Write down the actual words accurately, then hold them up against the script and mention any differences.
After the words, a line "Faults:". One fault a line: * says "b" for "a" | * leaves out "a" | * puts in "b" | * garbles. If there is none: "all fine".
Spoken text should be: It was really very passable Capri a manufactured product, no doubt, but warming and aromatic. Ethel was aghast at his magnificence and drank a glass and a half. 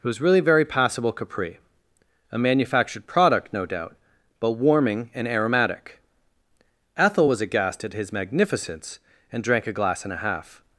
It was really very passable Capri a manufactured product, no doubt, but warming and aromatic. Ethel was aghast at his magnificence and drank a glass and a half.
Faults:
all fine